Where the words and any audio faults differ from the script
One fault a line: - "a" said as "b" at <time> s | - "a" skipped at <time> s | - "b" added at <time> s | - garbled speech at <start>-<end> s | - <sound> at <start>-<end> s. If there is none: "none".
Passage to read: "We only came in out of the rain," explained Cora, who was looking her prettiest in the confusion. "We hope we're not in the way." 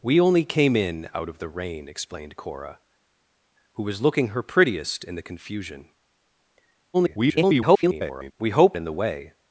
- garbled speech at 6.9-8.3 s
- "we're not" skipped at 8.8 s